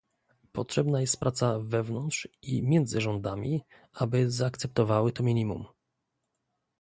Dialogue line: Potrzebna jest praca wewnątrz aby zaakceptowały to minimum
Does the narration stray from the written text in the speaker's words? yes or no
yes